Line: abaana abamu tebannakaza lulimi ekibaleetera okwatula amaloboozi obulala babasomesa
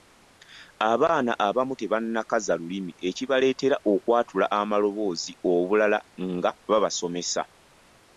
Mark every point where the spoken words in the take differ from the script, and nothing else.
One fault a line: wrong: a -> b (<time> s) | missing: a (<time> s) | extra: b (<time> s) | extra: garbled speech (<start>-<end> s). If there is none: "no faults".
extra: nga (6.3 s)